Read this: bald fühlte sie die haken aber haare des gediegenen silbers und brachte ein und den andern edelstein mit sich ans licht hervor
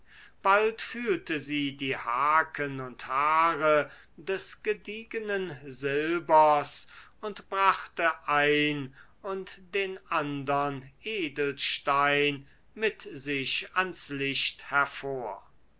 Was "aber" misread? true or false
true